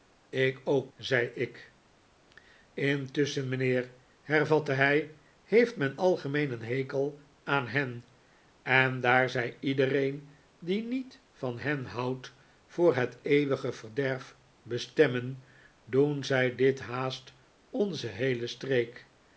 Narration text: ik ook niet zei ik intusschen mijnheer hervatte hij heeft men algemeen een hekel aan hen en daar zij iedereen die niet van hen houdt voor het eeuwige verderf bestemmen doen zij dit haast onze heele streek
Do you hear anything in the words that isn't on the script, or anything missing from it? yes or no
yes